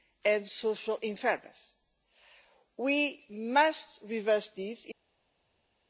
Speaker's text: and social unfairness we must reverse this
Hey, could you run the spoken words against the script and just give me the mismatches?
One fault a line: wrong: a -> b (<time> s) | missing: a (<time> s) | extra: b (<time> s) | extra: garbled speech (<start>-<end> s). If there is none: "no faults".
no faults